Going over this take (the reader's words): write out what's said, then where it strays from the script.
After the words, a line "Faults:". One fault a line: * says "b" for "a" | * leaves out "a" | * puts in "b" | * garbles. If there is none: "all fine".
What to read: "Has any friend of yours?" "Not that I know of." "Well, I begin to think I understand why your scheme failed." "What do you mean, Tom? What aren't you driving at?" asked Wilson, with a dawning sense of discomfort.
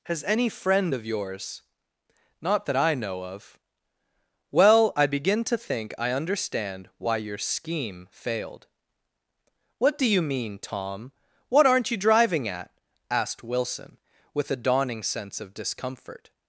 "Has any friend of yours?" "Not that I know of." "Well, I begin to think I understand why your scheme failed." "What do you mean, Tom? What aren't you driving at?" asked Wilson, with a dawning sense of discomfort.
Faults:
all fine